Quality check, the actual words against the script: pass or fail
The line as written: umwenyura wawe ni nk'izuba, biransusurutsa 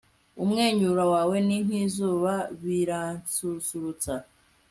pass